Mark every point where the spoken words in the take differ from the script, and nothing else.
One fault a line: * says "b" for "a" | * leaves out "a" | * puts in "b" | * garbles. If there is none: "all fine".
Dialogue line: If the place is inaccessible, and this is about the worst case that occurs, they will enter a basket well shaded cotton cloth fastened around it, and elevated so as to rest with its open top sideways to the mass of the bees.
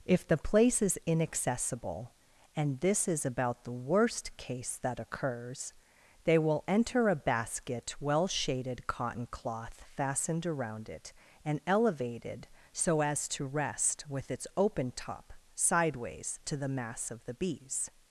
all fine